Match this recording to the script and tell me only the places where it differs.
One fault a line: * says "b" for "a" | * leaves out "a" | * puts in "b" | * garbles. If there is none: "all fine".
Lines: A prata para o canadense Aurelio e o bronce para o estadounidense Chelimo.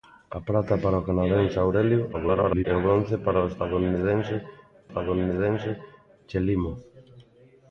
* garbles
* puts in "estadounidense"